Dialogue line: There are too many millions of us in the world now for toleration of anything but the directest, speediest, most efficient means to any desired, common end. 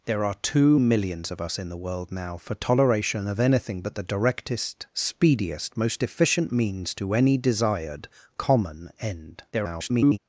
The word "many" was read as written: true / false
false